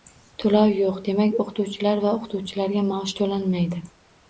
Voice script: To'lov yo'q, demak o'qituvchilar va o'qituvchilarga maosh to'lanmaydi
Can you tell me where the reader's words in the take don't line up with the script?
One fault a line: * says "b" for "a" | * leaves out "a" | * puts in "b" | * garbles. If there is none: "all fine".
all fine